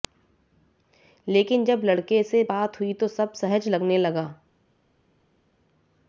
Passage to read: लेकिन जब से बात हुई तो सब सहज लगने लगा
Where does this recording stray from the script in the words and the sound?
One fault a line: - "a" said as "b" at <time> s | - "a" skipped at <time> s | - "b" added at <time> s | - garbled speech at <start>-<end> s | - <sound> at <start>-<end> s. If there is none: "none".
- "लड़के" added at 1.8 s